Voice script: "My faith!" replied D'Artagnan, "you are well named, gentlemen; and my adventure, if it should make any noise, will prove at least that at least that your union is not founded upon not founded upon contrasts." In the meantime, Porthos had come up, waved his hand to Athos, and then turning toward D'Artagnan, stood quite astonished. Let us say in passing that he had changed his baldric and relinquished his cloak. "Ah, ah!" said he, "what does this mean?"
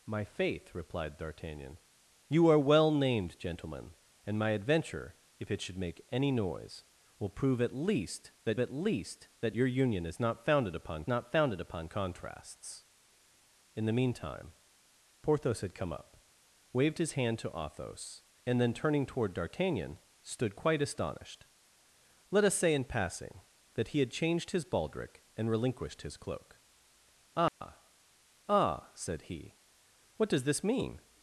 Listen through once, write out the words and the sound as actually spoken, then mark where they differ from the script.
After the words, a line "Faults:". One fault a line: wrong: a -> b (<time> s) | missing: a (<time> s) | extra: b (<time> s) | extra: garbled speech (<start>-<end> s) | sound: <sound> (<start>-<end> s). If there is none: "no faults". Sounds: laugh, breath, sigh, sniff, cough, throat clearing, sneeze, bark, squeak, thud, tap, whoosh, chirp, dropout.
"My faith!" replied D'Artagnan, "you are well named, gentlemen; and my adventure, if it should make any noise, will prove at least that at least that your union is not founded upon not founded upon contrasts." In the meantime, Porthos had come up, waved his hand to Athos, and then turning toward D'Artagnan, stood quite astonished. Let us say in passing that he had changed his baldric and relinquished his cloak. "Ah, ah!" said he, "what does this mean?"
Faults:
sound: dropout (27.5-27.6 s)